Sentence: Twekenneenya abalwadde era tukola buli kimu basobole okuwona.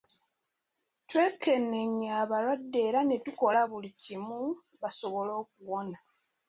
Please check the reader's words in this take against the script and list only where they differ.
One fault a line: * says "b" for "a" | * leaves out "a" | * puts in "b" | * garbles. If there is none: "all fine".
* puts in "ne"